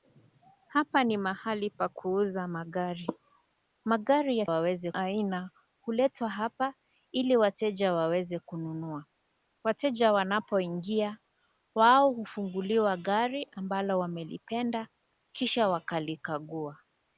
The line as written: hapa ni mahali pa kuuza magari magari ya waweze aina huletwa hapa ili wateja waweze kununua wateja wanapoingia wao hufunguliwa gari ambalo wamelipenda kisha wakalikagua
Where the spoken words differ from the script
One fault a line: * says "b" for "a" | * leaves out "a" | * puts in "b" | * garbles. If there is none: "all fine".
all fine